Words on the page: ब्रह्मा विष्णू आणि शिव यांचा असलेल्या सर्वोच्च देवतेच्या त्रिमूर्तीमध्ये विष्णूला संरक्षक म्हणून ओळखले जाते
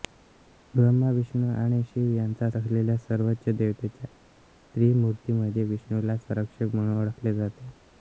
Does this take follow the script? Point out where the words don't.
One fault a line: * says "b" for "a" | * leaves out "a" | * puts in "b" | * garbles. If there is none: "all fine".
all fine